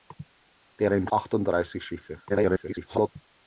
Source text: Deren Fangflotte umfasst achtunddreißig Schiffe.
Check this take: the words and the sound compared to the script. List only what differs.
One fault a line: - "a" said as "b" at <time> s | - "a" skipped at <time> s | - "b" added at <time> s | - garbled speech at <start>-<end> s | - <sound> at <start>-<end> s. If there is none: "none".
- "Fangflotte umfasst" skipped at 1.1 s
- garbled speech at 2.3-3.1 s